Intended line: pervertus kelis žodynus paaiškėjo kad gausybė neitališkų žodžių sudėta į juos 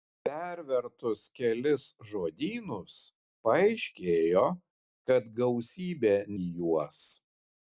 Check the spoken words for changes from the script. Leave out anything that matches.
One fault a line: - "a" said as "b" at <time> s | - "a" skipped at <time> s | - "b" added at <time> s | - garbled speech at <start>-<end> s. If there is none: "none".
- "neitališkų žodžių sudėta" skipped at 6.1 s